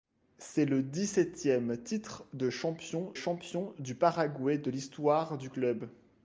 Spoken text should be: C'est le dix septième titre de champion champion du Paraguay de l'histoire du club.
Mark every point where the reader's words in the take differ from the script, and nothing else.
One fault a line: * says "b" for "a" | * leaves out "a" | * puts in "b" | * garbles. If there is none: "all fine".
all fine